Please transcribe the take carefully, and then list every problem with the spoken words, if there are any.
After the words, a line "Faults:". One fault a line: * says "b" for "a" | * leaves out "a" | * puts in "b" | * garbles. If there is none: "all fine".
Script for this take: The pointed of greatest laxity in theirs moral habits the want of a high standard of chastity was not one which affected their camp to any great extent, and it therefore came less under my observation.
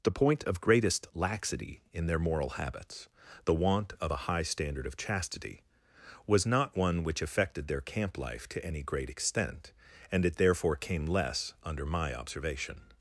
The point of greatest laxity in their moral habits the want of a high standard of chastity was not one which affected their camp life to any great extent, and it therefore came less under my observation.
Faults:
* says "point" for "pointed"
* says "their" for "theirs"
* puts in "life"